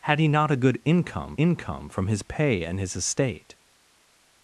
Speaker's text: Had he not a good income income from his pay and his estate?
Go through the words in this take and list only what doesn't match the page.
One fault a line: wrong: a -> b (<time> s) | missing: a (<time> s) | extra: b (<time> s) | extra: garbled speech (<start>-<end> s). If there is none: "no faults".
no faults